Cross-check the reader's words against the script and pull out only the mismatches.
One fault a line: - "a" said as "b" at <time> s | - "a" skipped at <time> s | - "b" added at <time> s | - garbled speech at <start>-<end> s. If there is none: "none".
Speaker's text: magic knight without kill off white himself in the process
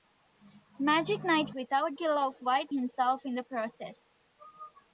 none